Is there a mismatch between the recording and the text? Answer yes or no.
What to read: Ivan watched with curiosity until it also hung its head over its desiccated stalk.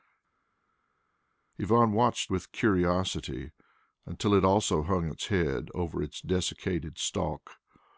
no